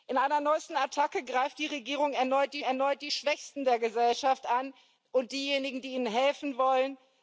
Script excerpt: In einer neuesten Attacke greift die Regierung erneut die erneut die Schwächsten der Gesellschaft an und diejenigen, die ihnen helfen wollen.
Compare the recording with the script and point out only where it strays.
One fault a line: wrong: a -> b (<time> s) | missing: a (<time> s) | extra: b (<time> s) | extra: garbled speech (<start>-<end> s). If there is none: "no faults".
no faults